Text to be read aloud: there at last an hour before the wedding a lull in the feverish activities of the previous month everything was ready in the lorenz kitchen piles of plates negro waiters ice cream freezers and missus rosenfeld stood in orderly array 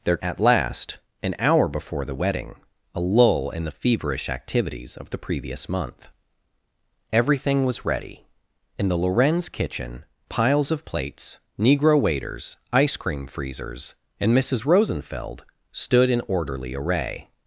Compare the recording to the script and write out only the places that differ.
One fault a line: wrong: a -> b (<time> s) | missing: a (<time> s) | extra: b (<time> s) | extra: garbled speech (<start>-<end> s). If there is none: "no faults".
no faults